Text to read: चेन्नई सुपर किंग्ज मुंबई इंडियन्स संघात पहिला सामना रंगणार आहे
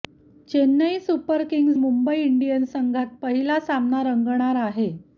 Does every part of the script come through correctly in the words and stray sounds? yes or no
yes